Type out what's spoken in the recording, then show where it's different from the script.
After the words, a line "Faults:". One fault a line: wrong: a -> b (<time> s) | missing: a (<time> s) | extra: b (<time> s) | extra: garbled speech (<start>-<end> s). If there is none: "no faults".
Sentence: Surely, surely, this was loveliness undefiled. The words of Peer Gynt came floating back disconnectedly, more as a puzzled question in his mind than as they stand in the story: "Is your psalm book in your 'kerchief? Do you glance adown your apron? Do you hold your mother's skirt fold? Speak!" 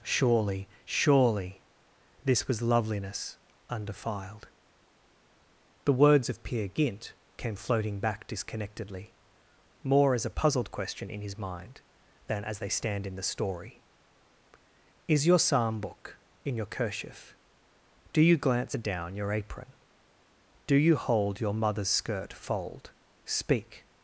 Surely, surely, this was loveliness undefiled. The words of Peer Gynt came floating back disconnectedly, more as a puzzled question in his mind than as they stand in the story: "Is your psalm book in your 'kerchief? Do you glance adown your apron? Do you hold your mother's skirt fold? Speak!"
Faults:
no faults